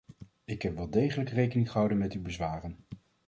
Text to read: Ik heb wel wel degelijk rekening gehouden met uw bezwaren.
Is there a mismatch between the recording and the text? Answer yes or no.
yes